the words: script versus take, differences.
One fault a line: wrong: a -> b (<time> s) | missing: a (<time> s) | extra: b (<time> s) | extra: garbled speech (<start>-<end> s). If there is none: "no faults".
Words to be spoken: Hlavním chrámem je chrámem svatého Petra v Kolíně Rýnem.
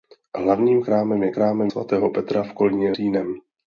no faults